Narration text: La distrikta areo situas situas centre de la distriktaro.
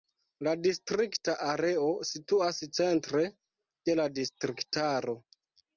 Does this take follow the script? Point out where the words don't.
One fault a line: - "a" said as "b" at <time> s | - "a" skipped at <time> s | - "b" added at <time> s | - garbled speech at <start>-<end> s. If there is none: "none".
- "situas" skipped at 2.6 s